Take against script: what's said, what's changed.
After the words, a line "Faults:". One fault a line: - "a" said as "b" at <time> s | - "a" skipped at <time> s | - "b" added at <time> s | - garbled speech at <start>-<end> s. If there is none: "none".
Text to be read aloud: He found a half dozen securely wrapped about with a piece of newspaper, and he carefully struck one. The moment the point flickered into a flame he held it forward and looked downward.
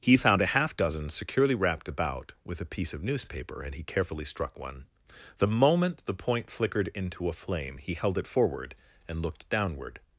He found a half dozen securely wrapped about with a piece of newspaper, and he carefully struck one. The moment the point flickered into a flame he held it forward and looked downward.
Faults:
none